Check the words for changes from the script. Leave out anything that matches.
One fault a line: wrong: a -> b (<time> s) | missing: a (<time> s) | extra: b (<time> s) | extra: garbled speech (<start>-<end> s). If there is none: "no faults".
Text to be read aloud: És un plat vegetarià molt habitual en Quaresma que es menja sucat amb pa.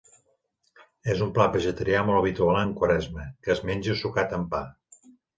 no faults